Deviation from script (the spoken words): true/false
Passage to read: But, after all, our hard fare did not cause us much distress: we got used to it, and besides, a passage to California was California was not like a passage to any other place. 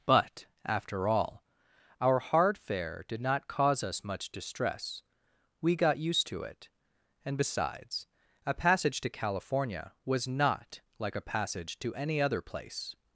true